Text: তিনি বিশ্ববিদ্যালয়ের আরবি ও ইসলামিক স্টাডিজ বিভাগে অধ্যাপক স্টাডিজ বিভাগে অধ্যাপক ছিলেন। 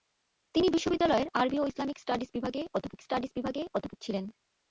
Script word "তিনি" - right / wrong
right